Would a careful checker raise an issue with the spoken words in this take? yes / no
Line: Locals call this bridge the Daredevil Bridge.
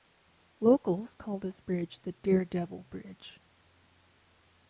no